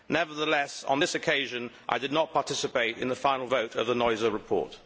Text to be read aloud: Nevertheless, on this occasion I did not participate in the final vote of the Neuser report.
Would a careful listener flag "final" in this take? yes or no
no